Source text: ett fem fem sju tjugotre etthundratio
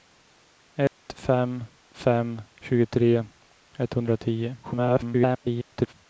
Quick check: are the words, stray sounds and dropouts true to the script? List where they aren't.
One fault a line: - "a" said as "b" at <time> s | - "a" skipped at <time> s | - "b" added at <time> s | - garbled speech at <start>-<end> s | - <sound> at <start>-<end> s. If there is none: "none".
- dropout at 0.9-0.9 s
- "sju" skipped at 2.4 s
- garbled speech at 4.6-5.9 s